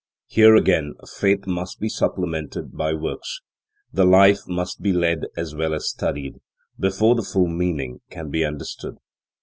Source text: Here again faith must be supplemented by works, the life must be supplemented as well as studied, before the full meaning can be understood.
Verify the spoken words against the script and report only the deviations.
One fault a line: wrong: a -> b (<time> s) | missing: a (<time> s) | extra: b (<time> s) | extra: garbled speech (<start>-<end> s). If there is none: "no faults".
wrong: supplemented -> led (4.9 s)